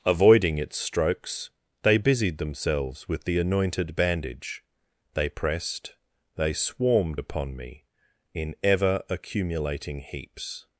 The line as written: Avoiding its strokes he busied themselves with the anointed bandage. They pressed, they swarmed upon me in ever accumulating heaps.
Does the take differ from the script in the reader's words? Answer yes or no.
yes